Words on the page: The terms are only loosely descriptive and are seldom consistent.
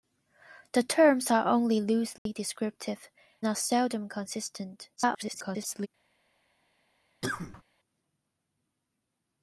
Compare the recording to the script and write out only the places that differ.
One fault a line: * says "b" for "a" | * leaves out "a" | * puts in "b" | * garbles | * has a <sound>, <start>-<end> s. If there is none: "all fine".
* has a dropout, 2.2-2.3 s
* leaves out "and"
* garbles
* has a cough, 7.2-7.6 s